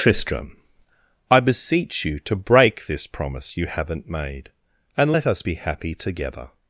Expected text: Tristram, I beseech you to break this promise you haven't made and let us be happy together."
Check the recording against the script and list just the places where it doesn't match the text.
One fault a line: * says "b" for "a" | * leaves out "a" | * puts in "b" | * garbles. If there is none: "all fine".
all fine